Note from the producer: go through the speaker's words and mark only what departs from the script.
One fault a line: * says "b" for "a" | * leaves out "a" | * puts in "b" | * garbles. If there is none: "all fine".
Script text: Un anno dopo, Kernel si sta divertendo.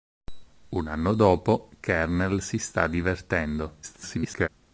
* garbles